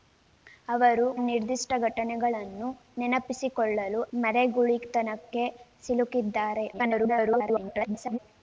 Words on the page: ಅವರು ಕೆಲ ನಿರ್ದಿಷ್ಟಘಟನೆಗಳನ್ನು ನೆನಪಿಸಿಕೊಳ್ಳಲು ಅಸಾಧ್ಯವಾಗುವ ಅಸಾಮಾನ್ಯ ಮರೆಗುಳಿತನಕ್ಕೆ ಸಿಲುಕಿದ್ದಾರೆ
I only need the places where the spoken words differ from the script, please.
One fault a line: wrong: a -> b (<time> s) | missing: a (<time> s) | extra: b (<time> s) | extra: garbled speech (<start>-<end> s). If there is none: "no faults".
missing: ಕೆಲ (1.0 s)
missing: ಅಸಾಧ್ಯವಾಗುವ ಅಸಾಮಾನ್ಯ (4.0 s)
extra: garbled speech (6.7-8.2 s)